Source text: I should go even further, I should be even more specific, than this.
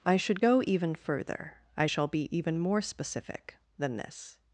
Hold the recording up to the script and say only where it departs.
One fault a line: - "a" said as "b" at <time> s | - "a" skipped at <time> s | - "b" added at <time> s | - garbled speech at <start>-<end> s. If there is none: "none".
- "should" said as "shall" at 1.8 s